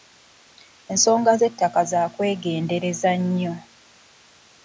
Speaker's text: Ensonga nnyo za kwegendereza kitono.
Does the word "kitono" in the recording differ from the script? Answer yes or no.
yes